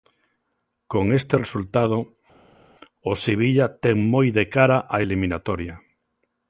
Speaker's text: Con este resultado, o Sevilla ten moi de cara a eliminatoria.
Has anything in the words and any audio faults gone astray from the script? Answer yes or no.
no